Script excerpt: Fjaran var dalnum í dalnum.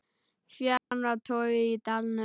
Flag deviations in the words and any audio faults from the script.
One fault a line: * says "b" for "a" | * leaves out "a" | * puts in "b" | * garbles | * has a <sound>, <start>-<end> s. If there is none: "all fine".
* has a dropout, 0.8-0.9 s
* says "torgið" for "dalnum"